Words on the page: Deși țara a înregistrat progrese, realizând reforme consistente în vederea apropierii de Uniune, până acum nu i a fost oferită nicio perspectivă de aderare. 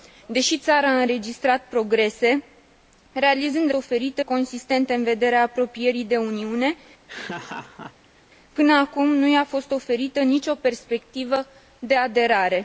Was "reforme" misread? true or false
true